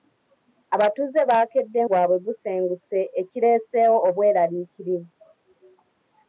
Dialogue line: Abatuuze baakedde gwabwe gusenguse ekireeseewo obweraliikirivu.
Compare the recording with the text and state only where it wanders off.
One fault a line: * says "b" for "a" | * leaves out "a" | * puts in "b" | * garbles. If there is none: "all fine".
all fine